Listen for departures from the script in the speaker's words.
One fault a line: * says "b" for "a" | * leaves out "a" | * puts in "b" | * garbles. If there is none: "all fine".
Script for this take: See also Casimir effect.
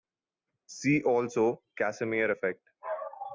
all fine